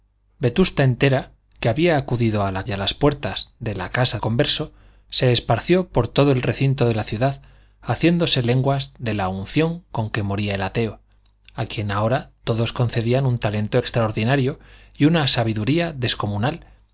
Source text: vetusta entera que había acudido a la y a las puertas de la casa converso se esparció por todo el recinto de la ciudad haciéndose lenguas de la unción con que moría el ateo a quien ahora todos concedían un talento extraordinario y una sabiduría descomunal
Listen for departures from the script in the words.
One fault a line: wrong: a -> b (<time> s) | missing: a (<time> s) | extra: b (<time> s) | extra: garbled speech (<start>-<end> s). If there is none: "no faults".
no faults